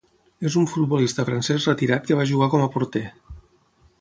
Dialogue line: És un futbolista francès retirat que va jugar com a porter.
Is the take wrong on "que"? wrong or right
right